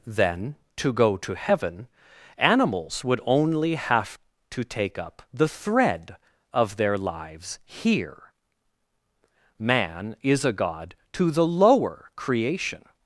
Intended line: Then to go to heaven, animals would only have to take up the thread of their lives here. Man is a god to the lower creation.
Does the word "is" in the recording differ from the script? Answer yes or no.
no